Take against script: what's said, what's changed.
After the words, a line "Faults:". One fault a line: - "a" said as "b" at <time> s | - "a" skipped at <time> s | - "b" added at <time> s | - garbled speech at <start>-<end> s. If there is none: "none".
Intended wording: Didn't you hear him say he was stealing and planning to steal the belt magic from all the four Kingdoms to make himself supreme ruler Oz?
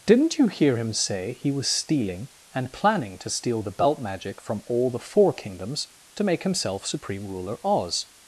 Didn't you hear him say he was stealing and planning to steal the belt magic from all the four Kingdoms to make himself supreme ruler Oz?
Faults:
none